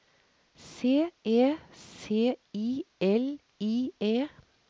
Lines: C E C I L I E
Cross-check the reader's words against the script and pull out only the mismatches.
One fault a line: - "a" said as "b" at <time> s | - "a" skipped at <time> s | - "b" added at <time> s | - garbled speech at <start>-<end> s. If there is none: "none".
none